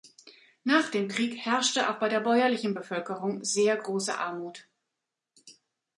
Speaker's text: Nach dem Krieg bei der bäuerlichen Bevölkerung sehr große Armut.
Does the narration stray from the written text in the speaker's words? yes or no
yes